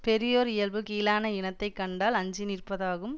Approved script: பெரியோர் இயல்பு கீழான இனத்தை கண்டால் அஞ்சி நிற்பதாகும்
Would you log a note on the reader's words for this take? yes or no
no